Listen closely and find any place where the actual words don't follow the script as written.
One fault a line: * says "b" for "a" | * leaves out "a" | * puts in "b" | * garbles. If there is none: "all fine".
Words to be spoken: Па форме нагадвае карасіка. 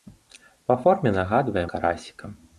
all fine